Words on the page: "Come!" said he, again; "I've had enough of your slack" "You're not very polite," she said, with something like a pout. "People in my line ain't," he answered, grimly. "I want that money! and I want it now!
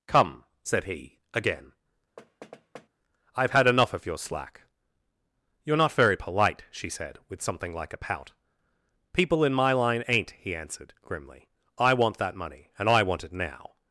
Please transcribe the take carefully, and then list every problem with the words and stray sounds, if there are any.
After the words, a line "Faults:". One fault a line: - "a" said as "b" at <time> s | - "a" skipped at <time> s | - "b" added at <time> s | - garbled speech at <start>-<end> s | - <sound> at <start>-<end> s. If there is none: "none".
"Come!" said he, again; "I've had enough of your slack" "You're not very polite," she said, with something like a pout. "People in my line ain't," he answered, grimly. "I want that money! and I want it now!
Faults:
- thud at 2.2-2.9 s